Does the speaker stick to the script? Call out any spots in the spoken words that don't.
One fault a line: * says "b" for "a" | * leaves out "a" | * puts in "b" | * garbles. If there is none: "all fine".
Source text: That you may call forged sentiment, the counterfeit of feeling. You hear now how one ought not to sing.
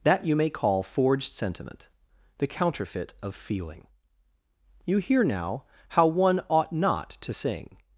all fine